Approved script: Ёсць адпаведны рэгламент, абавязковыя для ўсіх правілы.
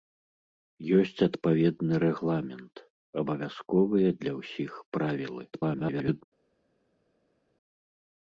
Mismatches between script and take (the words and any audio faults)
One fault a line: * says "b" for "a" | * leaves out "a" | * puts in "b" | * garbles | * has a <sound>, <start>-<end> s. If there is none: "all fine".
* garbles